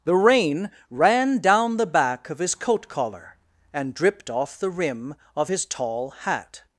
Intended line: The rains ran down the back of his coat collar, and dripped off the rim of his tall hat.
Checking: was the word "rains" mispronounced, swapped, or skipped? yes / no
yes